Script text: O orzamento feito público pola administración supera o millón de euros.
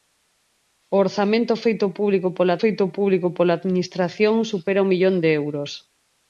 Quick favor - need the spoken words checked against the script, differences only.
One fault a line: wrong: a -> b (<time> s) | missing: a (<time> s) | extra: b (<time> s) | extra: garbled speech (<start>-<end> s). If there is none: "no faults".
extra: feito público pola (2.6 s)